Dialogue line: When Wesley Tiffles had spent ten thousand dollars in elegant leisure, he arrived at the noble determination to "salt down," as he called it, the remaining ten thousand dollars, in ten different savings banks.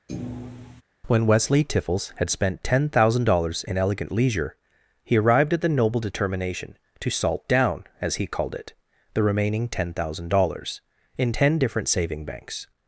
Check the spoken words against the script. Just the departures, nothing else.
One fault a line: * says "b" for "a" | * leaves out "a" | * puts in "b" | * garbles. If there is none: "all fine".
* says "saving" for "savings"